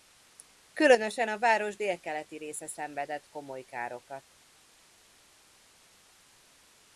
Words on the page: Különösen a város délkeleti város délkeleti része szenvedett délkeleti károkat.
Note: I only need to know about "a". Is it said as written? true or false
true